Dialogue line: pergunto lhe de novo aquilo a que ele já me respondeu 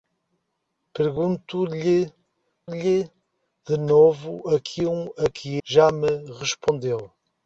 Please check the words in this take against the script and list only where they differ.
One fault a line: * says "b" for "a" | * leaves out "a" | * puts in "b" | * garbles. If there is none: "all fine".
* puts in "lhe"
* leaves out "ele"